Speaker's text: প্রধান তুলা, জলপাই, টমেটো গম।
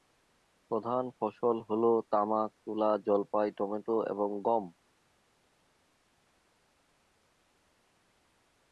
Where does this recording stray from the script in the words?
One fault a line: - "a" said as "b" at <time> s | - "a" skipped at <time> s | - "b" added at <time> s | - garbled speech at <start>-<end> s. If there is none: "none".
- "ফসল হ'ল তামাক" added at 1.2 s
- "এবং" added at 4.1 s